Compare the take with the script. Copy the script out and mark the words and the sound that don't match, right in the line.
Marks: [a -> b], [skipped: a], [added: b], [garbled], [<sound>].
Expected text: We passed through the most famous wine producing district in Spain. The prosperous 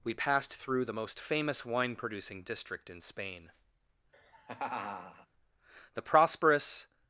We passed through the most famous wine producing district in Spain. [laugh] The prosperous